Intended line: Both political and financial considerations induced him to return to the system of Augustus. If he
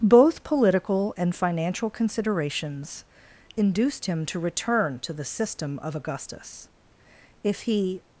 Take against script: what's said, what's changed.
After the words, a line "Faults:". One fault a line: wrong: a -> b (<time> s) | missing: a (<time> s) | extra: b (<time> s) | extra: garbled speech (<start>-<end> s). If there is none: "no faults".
Both political and financial considerations induced him to return to the system of Augustus. If he
Faults:
no faults